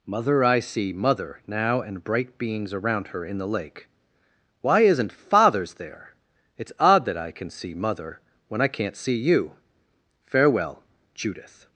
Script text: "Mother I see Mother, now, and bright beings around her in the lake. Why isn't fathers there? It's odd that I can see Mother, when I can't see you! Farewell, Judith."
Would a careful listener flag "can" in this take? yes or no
no